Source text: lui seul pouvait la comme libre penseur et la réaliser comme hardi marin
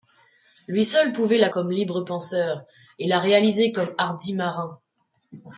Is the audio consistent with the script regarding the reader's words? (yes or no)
yes